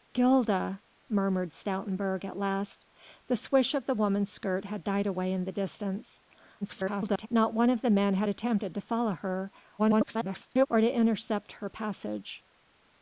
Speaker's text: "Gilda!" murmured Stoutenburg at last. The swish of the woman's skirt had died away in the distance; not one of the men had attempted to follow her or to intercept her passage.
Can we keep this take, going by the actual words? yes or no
no